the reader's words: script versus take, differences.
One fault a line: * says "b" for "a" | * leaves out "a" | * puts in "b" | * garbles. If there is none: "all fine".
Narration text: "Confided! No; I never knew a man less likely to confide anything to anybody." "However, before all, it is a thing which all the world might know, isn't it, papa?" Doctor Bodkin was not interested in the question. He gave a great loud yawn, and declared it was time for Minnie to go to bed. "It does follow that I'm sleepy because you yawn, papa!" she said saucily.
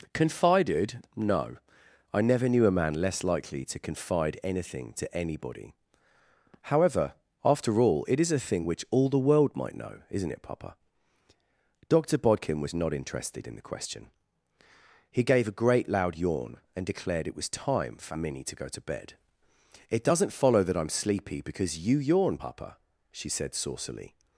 * says "after" for "before"
* says "doesn't" for "does"